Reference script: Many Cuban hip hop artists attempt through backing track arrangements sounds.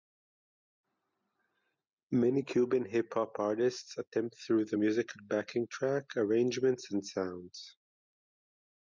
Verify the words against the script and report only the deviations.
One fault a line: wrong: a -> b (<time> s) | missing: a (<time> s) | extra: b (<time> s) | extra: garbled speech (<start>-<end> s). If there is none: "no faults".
extra: the musical (4.7 s)
extra: and (6.9 s)